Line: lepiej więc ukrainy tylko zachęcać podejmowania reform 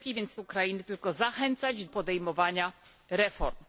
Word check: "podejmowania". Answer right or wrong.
right